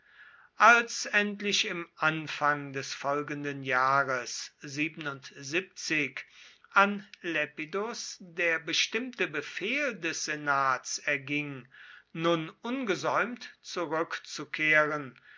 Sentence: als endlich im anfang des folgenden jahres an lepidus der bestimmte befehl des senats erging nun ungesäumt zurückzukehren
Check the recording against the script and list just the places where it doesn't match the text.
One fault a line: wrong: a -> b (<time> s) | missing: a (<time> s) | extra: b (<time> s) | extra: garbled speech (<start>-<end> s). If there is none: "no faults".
no faults